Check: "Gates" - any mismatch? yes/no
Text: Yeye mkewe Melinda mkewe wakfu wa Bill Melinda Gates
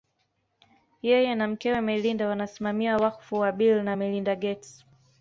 no